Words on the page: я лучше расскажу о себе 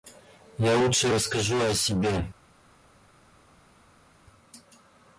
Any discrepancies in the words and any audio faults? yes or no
no